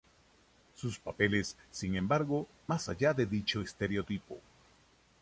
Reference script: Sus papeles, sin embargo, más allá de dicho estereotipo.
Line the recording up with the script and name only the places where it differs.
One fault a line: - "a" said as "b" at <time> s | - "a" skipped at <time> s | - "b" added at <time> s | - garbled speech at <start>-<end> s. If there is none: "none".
none